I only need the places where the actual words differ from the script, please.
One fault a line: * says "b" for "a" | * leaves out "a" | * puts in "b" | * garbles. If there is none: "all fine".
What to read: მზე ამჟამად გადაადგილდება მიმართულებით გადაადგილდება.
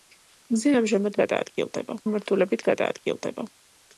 all fine